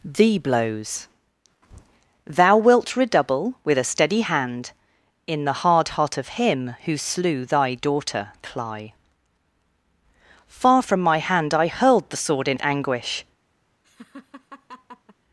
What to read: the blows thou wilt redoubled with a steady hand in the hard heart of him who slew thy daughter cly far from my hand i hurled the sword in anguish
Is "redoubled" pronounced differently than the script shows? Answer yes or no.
yes